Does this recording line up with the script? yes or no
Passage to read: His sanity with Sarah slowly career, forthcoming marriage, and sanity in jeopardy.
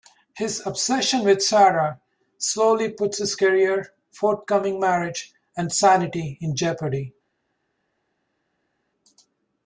no